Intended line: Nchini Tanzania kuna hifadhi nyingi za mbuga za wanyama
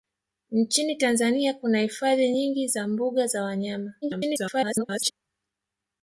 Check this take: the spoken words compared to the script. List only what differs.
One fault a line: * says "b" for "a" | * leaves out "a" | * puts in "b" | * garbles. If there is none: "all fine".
* garbles